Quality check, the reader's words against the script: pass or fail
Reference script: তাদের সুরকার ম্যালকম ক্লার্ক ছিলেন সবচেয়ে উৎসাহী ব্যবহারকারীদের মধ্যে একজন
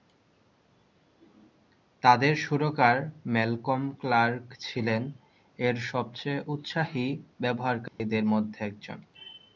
fail